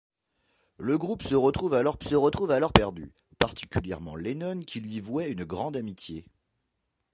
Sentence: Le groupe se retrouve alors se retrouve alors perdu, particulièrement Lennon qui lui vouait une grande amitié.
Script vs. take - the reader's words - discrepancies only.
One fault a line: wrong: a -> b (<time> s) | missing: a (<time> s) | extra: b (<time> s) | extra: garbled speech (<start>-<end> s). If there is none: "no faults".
no faults